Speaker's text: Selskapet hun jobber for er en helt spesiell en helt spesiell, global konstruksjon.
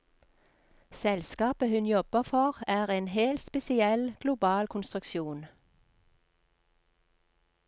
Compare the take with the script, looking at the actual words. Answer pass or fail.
fail